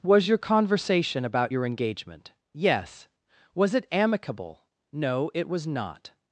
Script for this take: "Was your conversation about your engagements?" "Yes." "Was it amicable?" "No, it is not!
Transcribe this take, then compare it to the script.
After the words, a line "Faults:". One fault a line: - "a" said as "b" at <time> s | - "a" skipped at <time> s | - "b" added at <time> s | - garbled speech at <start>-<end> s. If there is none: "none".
"Was your conversation about your engagement?" "Yes." "Was it amicable?" "No, it was not!
Faults:
- "engagements" said as "engagement" at 1.7 s
- "is" said as "was" at 5.5 s